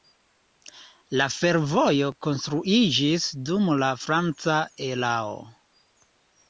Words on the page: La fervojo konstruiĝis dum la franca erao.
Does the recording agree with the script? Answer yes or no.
yes